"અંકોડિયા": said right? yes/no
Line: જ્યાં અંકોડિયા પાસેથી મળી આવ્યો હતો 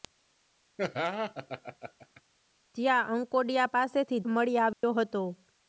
yes